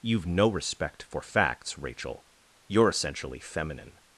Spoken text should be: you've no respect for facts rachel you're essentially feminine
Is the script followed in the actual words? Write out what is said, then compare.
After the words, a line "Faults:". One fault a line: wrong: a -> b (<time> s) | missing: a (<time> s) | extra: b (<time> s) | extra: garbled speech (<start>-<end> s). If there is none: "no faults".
you've no respect for facts rachel you're essentially feminine
Faults:
no faults